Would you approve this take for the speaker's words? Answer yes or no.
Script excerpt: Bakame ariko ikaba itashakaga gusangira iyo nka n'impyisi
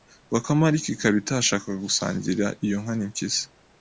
yes